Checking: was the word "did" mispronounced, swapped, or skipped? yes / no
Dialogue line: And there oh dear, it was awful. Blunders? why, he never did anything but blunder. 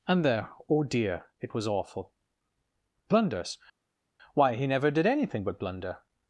no